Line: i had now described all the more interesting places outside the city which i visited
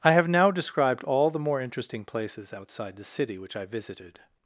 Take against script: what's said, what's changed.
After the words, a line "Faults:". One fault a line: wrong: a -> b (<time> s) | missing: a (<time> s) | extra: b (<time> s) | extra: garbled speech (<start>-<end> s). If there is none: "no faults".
i have now described all the more interesting places outside the city which i visited
Faults:
wrong: had -> have (0.1 s)